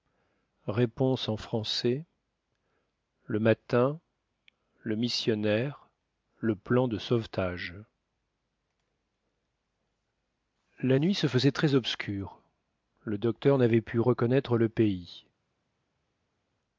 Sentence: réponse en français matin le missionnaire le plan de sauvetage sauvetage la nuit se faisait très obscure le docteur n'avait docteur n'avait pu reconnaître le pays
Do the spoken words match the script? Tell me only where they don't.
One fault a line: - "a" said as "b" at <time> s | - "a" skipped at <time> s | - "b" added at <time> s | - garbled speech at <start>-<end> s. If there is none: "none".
- "le" added at 3.2 s
- "sauvetage" skipped at 7.8 s
- "docteur n'avait" skipped at 13.8 s